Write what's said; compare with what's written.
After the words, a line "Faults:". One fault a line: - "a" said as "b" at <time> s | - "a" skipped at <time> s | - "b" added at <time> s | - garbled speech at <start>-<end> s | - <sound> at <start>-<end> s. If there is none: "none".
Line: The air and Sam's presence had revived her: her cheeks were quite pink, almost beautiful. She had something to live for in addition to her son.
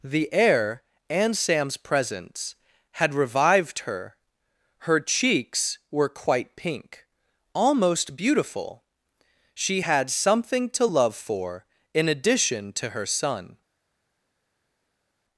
The air and Sam's presence had revived her: her cheeks were quite pink, almost beautiful. She had something to love for in addition to her son.
Faults:
- "live" said as "love" at 10.8 s